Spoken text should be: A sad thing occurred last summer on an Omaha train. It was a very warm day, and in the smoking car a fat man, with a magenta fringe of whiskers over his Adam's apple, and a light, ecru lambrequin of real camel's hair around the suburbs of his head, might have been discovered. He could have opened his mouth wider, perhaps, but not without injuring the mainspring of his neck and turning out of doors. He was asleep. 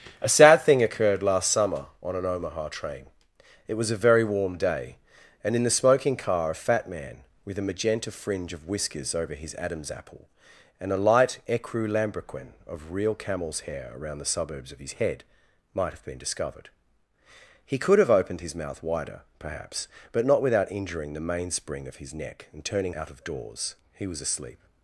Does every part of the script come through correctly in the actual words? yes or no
yes